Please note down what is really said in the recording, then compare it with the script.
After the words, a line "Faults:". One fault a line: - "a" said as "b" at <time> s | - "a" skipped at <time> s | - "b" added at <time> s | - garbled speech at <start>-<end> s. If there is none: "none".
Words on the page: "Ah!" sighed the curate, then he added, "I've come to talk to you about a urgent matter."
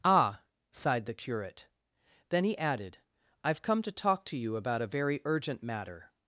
"Ah!" sighed the curate, then he added, "I've come to talk to you about a very urgent matter."
Faults:
- "very" added at 4.9 s